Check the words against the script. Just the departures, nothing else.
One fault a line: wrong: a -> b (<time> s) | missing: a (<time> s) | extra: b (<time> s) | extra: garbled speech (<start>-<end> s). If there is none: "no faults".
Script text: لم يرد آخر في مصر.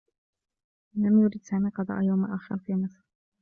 extra: سامي قضاء يوم (1.4 s)